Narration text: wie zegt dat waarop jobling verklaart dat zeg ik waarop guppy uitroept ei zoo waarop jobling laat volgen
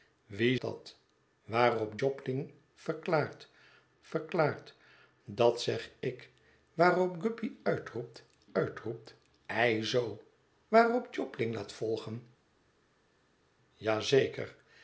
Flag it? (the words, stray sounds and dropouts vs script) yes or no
yes